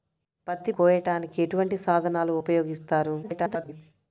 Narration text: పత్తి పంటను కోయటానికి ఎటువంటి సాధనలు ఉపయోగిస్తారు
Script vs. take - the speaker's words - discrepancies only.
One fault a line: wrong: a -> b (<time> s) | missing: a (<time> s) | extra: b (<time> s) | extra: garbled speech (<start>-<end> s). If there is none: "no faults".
missing: పంటను (0.7 s)
extra: garbled speech (3.2-3.7 s)